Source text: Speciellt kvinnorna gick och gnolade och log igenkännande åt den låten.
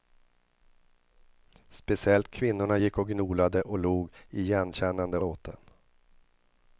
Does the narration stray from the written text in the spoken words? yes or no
yes